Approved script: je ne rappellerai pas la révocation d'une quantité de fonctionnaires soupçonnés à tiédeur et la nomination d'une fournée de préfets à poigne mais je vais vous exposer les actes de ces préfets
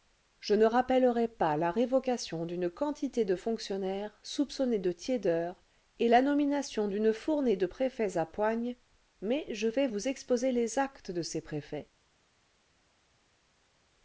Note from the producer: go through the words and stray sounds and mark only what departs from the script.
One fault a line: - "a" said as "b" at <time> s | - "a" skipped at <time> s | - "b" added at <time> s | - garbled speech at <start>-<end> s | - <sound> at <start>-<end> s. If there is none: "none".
- "à" said as "de" at 4.8 s